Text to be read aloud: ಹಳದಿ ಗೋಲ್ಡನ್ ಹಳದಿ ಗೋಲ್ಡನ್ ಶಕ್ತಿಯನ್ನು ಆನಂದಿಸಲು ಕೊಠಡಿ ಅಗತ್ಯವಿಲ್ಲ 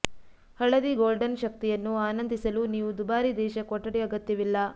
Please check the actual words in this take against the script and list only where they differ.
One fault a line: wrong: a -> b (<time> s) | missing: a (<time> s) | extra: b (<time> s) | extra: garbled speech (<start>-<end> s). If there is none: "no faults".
wrong: ಹಳದಿ ಗೋಲ್ಡನ್ ಶಕ್ತಿಯನ್ನು ಆನಂದಿಸಲು -> ಶಕ್ತಿಯನ್ನು ಆನಂದಿಸಲು ನೀವು ದುಬಾರಿ ದೇಶ (1.4 s)